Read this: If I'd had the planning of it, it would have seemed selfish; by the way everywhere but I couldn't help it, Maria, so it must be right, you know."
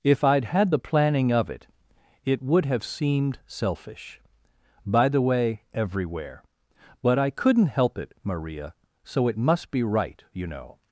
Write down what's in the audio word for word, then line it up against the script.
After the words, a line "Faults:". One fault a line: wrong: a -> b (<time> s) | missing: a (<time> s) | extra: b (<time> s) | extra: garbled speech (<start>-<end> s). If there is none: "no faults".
If I'd had the planning of it, it would have seemed selfish; by the way everywhere but I couldn't help it, Maria, so it must be right, you know."
Faults:
no faults